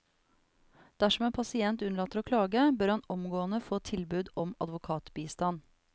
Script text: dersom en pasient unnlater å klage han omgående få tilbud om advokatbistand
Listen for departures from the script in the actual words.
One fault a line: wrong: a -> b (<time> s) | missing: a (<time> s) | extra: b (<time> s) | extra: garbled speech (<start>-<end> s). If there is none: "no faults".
extra: bør (2.8 s)